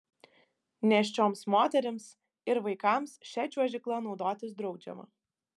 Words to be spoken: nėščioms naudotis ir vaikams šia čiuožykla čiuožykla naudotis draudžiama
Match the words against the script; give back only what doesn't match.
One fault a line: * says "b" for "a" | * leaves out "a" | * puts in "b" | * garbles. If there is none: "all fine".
* says "moterims" for "naudotis"
* leaves out "čiuožykla"